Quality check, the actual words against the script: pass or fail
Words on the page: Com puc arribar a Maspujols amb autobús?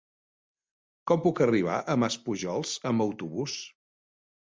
pass